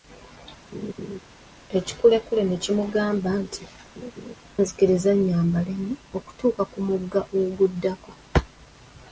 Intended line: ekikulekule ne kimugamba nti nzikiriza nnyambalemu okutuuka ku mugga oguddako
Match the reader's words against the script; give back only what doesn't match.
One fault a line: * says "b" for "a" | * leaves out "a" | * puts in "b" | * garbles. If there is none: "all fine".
all fine